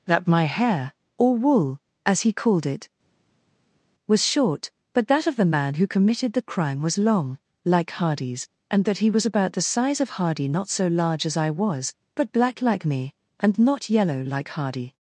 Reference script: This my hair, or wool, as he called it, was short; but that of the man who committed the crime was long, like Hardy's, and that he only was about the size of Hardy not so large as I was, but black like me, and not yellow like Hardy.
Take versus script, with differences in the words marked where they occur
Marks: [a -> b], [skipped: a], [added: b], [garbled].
[This -> That] my hair, or wool, as he called it, was short; but that of the man who committed the crime was long, like Hardy's, and that he [skipped: only] was about the size of Hardy not so large as I was, but black like me, and not yellow like Hardy.